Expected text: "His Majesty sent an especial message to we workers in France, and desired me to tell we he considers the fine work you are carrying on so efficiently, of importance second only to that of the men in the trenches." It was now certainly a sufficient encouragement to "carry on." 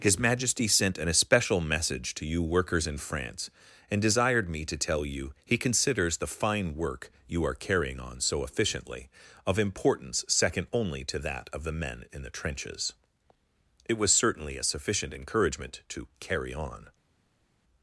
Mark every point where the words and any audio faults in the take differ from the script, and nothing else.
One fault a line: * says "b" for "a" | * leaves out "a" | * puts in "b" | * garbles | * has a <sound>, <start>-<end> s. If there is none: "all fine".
* says "you" for "we"
* says "you" for "we"
* leaves out "now"